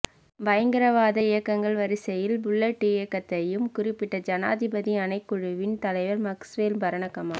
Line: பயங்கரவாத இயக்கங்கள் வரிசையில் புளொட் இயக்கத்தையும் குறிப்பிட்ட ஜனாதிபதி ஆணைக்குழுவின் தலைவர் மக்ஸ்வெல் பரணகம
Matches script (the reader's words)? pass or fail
pass